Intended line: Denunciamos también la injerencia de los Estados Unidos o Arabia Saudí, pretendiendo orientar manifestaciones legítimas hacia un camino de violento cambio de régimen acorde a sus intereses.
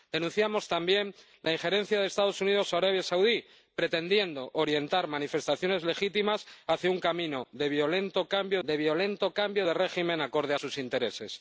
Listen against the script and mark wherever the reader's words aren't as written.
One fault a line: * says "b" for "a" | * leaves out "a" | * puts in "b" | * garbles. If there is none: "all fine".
* puts in "violento cambio de"